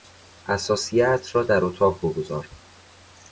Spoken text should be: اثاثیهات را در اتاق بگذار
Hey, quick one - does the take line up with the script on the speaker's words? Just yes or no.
yes